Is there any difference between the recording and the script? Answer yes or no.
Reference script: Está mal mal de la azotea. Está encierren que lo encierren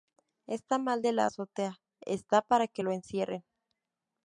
yes